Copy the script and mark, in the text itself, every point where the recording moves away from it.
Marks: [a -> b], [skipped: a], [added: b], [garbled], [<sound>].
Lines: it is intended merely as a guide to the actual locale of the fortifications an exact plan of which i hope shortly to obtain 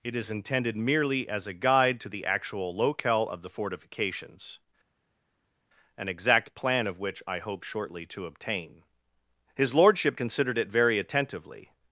it is intended merely as a guide to the actual locale of the fortifications an exact plan of which i hope shortly to obtain [added: his lordship considered it very attentively]